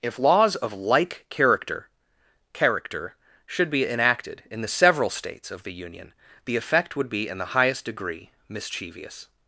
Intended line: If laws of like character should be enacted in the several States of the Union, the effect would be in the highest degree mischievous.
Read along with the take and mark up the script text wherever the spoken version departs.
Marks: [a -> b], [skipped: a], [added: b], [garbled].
If laws of like character [added: character] should be enacted in the several States of the Union, the effect would be in the highest degree mischievous.